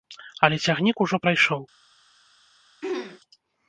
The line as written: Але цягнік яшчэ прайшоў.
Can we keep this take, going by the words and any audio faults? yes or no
no